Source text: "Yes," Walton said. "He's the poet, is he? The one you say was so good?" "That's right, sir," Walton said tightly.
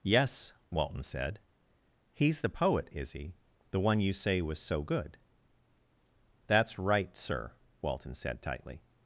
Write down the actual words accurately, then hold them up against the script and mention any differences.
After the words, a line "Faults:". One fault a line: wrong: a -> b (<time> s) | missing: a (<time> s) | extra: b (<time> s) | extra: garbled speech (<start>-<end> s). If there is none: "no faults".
"Yes," Walton said. "He's the poet, is he? The one you say was so good?" "That's right, sir," Walton said tightly.
Faults:
no faults